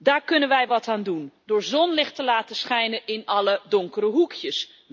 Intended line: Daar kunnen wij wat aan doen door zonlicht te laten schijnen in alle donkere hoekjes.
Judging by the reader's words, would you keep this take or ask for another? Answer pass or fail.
pass